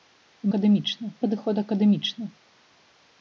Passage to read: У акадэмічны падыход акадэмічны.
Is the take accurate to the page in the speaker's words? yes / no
yes